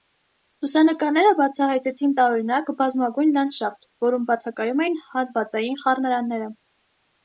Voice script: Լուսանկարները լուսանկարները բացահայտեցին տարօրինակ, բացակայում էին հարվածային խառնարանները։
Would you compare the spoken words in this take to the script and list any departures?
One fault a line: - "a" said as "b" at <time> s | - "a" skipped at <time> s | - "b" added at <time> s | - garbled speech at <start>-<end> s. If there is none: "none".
- "լուսանկարները" skipped at 1.3 s
- "բազմագույն լանդշաֆտ որում" added at 2.8 s